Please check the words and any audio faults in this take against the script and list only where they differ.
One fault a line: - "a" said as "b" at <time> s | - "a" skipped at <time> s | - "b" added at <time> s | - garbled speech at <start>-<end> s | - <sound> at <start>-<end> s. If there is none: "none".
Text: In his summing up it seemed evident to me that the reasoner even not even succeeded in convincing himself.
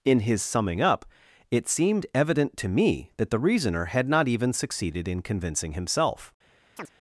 - "even" said as "had" at 3.9 s
- chirp at 6.8-6.9 s